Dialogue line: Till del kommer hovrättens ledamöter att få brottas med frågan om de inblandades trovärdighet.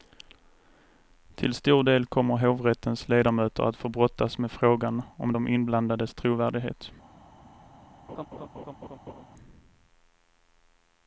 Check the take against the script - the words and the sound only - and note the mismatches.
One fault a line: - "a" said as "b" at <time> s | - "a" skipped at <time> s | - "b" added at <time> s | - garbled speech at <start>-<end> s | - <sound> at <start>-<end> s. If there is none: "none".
- "stor" added at 1.5 s
- laugh at 8.1-9.2 s